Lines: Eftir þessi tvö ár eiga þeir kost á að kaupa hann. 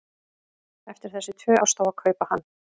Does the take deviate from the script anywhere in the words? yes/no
yes